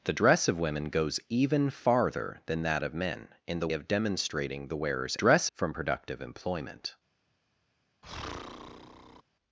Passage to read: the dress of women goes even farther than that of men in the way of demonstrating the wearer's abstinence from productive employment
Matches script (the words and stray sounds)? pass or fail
fail